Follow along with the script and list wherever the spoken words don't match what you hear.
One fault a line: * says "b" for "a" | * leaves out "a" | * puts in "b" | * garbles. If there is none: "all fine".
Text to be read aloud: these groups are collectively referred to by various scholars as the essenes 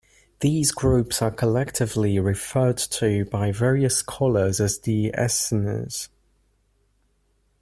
all fine